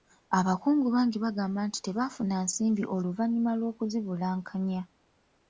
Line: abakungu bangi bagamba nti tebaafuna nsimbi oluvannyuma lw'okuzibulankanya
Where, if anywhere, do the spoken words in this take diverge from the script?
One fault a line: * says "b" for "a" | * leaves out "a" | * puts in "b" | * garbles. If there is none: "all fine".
all fine